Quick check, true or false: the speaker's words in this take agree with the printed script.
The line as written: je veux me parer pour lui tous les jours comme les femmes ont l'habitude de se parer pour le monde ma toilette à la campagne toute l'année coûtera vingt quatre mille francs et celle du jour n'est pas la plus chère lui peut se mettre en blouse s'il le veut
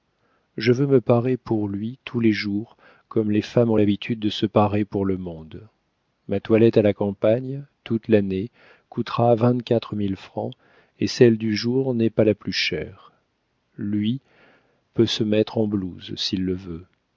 true